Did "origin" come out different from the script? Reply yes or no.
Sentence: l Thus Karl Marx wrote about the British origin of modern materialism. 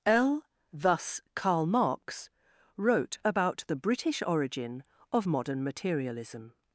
no